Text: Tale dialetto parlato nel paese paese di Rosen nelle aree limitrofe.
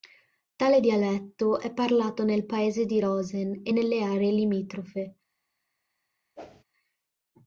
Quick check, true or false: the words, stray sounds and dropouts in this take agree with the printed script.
false